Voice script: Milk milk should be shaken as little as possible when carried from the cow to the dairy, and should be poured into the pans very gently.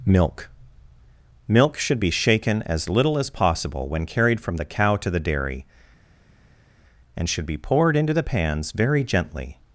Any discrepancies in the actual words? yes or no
no